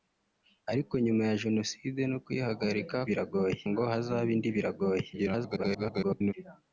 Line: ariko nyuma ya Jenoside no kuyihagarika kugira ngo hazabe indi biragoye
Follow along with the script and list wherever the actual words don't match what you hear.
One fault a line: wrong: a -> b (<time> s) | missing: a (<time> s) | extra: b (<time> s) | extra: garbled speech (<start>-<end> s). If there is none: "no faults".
wrong: kugira -> biragoye (3.1 s)
extra: garbled speech (5.1-6.3 s)